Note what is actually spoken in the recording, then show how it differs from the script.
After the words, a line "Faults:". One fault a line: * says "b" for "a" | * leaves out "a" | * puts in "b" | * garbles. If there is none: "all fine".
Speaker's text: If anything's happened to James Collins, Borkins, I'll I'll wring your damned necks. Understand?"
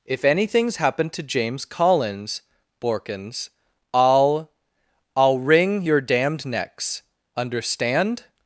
If anything's happened to James Collins, Borkins, I'll I'll wring your damned necks. Understand?"
Faults:
all fine